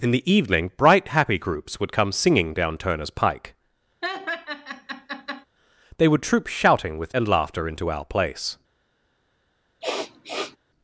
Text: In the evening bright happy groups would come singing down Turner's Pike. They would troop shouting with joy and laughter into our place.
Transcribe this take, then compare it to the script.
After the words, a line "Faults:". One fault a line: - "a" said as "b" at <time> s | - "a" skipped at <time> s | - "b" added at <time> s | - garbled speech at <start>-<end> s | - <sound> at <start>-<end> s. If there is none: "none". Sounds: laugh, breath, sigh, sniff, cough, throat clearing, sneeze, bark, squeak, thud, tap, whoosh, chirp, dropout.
In the evening bright happy groups would come singing down Turner's Pike. They would troop shouting with and laughter into our place.
Faults:
- laugh at 4.0-5.5 s
- "joy" skipped at 7.1 s
- sniff at 9.8-10.6 s